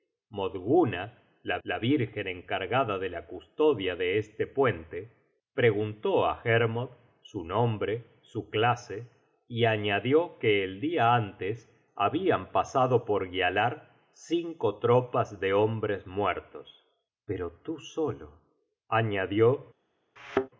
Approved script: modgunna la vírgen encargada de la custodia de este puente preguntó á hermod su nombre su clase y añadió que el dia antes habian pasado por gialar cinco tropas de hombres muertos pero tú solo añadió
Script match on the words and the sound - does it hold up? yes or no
no